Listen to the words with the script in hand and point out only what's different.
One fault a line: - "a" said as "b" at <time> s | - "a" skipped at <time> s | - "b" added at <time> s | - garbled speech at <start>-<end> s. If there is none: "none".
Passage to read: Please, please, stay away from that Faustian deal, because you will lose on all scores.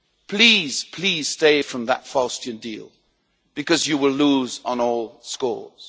- "away" skipped at 1.6 s